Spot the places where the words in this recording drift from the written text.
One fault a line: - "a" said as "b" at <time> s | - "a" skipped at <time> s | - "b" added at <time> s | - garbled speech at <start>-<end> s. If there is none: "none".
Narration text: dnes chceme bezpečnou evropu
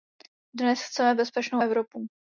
none